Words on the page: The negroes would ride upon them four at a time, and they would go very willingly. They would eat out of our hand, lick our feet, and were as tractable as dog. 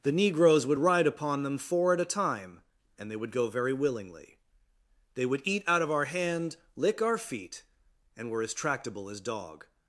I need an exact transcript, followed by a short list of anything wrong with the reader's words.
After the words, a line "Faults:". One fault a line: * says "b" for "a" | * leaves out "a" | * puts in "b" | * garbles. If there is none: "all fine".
The negroes would ride upon them four at a time, and they would go very willingly. They would eat out of our hand, lick our feet, and were as tractable as dog.
Faults:
all fine